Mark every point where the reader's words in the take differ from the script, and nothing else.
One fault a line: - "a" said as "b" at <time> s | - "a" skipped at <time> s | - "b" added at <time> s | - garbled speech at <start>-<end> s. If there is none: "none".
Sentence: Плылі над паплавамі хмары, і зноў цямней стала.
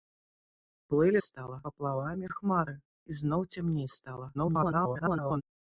- "над" said as "стала" at 1.3 s
- garbled speech at 4.3-5.4 s